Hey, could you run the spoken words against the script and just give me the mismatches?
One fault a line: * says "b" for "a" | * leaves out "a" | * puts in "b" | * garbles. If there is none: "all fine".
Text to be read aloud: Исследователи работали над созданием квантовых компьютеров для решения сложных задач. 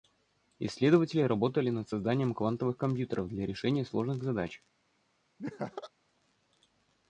all fine